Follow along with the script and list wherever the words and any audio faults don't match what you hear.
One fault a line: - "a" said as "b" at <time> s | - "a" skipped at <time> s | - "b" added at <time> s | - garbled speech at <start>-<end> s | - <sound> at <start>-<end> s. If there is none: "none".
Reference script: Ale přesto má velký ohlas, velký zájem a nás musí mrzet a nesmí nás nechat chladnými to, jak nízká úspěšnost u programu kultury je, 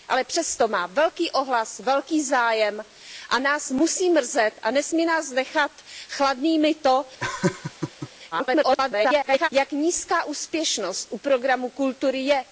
- laugh at 7.2-8.1 s
- garbled speech at 8.3-9.5 s